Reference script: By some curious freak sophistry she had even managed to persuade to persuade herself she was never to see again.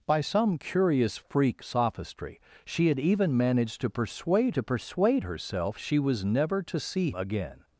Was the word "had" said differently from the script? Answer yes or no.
no